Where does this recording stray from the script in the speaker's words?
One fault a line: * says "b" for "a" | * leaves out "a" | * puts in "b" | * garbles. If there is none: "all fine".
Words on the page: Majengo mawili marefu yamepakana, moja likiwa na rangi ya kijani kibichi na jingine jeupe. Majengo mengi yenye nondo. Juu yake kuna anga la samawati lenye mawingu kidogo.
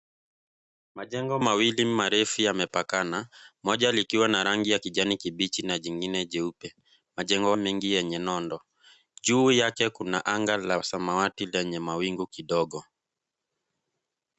all fine